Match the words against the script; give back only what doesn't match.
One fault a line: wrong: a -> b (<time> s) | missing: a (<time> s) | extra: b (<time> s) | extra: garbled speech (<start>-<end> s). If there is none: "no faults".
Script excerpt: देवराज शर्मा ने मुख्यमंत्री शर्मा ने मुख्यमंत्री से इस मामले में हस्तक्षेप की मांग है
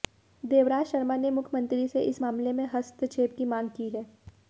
missing: शर्मा ने मुख्यमंत्री (1.9 s)
extra: की (3.7 s)